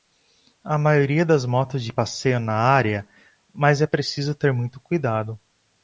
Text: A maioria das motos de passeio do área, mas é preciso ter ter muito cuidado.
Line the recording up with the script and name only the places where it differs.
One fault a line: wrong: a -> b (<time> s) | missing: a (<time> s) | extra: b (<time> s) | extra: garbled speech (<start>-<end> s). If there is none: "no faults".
wrong: do -> na (2.4 s)
missing: ter (4.5 s)